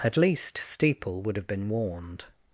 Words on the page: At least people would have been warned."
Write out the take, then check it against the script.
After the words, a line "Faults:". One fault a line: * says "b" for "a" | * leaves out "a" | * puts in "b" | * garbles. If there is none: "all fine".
At least steeple would have been warned."
Faults:
* says "steeple" for "people"